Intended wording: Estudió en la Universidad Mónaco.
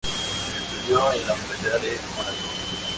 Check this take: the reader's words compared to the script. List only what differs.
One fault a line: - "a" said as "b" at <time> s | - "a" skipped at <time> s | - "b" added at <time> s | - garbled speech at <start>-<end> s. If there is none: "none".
- "de" added at 1.8 s